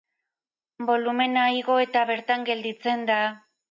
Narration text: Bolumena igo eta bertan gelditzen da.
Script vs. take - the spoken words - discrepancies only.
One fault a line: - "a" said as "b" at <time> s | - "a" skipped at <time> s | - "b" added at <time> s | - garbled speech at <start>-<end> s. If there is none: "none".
none